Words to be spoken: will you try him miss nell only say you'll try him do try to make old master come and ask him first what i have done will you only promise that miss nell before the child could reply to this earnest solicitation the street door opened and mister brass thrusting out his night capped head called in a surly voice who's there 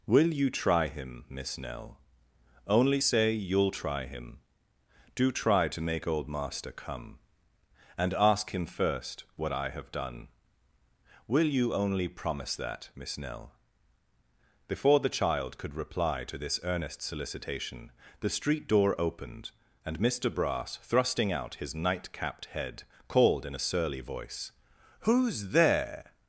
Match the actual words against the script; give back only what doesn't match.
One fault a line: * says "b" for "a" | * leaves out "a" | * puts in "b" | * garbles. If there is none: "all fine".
all fine